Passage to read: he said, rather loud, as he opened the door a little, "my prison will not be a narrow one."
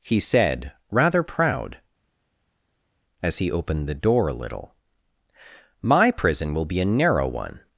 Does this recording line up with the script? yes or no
no